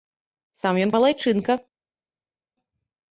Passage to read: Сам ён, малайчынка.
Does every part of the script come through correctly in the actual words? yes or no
yes